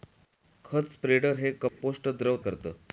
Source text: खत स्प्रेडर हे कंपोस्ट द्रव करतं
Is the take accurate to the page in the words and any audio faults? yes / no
no